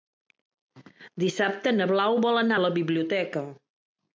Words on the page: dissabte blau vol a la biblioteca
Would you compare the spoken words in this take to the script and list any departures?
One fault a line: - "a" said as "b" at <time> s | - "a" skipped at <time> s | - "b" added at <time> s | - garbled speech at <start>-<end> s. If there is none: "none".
- "na" added at 1.8 s
- "anar" added at 2.4 s